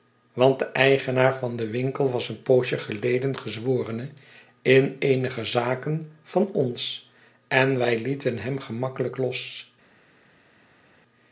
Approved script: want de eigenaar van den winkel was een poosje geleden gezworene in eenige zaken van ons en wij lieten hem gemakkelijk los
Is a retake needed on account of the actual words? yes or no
no